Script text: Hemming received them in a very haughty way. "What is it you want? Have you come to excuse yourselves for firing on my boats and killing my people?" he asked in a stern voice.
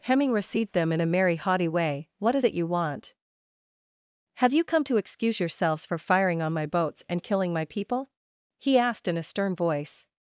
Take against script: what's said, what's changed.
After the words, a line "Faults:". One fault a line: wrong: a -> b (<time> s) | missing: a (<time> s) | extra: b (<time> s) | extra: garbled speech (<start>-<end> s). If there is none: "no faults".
Hemming received them in a merry haughty way. "What is it you want? Have you come to excuse yourselves for firing on my boats and killing my people?" he asked in a stern voice.
Faults:
wrong: very -> merry (1.1 s)